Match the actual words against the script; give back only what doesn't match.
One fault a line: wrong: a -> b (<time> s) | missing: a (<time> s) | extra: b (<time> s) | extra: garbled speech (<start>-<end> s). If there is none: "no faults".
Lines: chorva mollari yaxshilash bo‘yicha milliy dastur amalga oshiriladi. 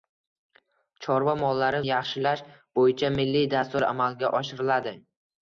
no faults